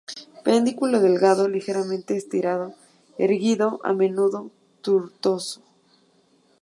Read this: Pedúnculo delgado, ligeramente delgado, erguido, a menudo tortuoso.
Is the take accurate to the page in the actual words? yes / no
no